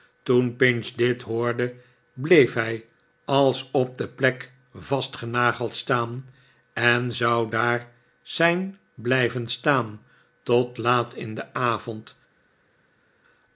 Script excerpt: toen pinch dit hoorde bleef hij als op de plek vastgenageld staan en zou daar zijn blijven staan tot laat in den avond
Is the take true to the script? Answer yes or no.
yes